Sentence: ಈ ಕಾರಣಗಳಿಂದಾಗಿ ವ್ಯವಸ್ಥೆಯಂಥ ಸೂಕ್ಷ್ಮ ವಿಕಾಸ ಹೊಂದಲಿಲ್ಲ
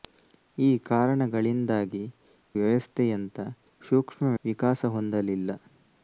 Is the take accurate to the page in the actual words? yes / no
yes